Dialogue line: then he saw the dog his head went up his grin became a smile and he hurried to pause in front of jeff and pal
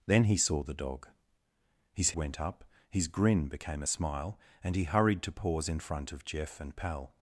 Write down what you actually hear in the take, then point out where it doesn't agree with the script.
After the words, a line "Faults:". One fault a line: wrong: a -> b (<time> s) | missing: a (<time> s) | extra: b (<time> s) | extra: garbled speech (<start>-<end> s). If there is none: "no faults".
then he saw the dog his went up his grin became a smile and he hurried to pause in front of jeff and pal
Faults:
missing: head (2.1 s)